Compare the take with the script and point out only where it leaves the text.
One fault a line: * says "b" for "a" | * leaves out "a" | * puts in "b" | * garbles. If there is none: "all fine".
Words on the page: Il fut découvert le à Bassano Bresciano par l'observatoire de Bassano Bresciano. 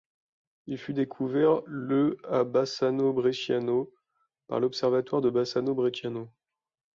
all fine